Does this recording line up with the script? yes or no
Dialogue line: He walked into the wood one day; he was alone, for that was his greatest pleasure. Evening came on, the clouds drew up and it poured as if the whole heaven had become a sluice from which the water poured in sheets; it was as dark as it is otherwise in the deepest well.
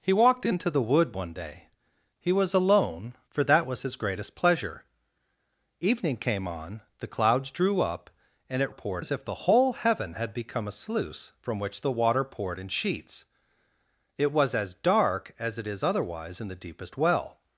yes